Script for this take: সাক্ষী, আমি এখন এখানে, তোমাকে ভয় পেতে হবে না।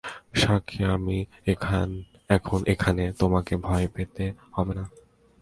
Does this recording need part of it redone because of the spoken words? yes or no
no